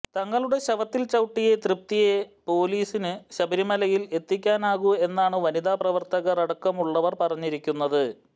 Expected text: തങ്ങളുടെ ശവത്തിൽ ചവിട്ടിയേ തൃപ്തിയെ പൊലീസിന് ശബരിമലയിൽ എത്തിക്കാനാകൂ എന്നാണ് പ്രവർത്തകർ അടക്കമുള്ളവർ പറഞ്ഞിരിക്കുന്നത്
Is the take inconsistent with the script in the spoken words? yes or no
yes